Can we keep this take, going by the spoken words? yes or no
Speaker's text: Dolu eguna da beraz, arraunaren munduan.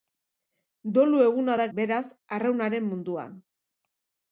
yes